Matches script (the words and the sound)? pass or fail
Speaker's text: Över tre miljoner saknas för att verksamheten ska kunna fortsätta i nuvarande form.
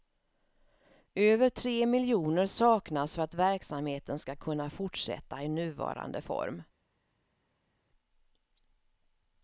pass